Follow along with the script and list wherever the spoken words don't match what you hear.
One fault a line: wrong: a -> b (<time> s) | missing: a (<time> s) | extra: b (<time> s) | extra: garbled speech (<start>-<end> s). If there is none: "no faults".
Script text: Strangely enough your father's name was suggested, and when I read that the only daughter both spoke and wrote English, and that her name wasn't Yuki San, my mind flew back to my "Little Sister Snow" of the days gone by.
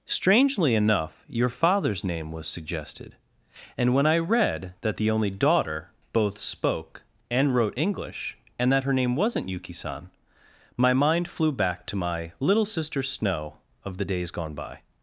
no faults